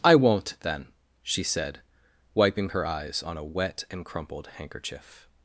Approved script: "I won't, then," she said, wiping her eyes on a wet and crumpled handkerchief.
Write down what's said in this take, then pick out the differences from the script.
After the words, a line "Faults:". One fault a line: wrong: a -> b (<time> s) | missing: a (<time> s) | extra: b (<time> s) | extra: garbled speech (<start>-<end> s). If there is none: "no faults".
"I won't, then," she said, wiping her eyes on a wet and crumpled handkerchief.
Faults:
no faults